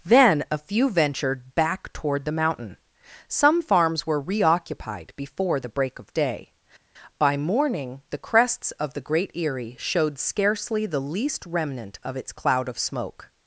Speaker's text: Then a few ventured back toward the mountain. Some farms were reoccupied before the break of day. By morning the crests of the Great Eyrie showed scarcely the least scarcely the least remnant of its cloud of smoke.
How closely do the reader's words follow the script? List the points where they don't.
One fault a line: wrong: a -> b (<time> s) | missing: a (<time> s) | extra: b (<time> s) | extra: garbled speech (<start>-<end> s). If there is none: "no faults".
missing: scarcely the least (11.5 s)